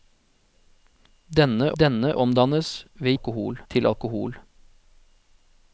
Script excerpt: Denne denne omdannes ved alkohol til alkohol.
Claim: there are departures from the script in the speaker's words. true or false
false